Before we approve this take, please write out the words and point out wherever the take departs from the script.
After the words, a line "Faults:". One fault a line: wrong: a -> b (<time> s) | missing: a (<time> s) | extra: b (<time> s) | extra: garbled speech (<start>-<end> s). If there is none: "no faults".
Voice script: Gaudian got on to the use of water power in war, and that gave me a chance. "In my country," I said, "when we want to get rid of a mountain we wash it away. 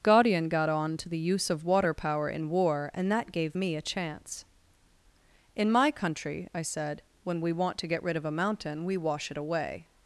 Gaudian got on to the use of water power in war, and that gave me a chance. "In my country," I said, "when we want to get rid of a mountain we wash it away.
Faults:
no faults